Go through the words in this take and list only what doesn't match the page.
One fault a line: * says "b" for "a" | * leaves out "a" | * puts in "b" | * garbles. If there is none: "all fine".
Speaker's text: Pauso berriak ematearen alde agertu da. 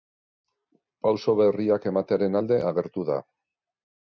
all fine